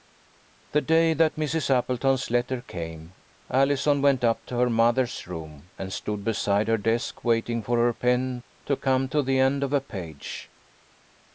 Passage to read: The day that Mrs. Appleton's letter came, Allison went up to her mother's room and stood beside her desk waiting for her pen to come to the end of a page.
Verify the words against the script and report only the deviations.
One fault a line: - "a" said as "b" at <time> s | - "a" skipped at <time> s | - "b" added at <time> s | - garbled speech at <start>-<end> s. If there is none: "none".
none